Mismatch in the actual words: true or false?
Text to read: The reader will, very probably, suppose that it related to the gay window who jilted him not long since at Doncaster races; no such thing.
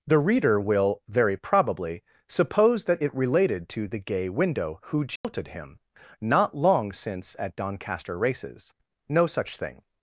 false